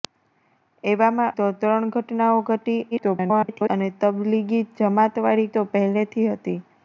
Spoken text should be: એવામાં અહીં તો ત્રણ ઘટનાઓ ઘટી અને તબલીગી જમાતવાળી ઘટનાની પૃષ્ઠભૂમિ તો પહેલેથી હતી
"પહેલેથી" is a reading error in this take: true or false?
false